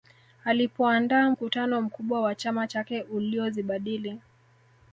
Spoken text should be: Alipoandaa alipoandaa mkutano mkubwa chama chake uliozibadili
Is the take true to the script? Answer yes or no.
no